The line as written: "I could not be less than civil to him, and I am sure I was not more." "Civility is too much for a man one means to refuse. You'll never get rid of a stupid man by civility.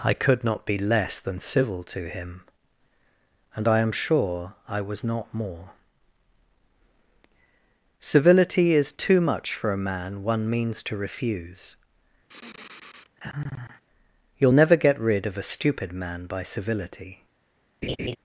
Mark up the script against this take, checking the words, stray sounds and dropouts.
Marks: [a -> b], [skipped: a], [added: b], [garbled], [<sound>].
"I could not be less than civil to him, and I am sure I was not more." "Civility is too much for a man one means to refuse. [sigh] You'll never get rid of a stupid man by civility. [laugh]